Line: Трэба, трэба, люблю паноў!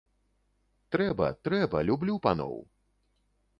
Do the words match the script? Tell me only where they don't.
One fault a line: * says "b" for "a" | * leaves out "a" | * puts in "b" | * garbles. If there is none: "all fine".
all fine